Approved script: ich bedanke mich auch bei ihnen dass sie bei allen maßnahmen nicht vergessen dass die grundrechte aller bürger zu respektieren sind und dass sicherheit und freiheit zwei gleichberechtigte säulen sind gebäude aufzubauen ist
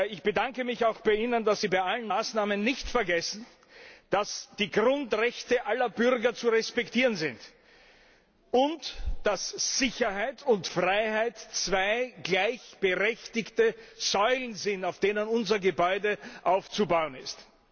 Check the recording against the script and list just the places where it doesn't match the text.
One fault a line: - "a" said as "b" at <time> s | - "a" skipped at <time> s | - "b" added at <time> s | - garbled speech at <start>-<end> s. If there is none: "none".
- "auf denen unser" added at 14.8 s